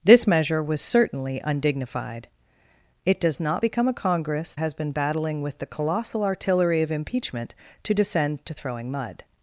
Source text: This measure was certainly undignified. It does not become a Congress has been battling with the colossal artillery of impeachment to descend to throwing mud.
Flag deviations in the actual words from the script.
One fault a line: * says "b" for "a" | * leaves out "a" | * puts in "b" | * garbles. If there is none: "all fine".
all fine